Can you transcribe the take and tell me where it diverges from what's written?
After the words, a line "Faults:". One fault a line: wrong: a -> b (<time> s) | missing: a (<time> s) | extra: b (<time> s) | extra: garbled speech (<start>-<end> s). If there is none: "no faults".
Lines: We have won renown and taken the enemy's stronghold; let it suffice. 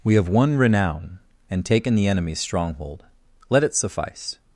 We have won renown and taken the enemy's stronghold; let it suffice.
Faults:
no faults